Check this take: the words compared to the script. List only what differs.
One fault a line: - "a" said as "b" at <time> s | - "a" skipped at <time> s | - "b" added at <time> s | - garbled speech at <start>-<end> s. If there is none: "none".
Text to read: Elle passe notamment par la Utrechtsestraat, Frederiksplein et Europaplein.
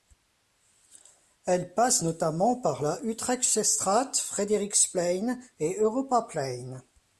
none